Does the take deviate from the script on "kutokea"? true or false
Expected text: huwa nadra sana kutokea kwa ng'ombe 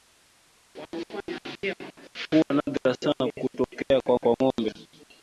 false